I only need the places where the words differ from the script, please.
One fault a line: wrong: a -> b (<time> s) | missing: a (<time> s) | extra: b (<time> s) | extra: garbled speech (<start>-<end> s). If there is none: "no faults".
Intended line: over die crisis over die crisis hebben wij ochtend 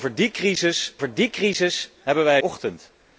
no faults